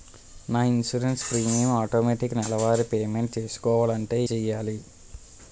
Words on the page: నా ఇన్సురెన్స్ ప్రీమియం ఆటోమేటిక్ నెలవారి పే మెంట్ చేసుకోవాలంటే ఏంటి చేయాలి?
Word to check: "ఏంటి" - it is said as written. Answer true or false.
false